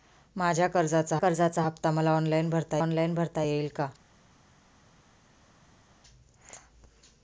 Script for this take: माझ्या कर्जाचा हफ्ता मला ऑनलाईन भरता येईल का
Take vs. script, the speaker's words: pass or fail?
fail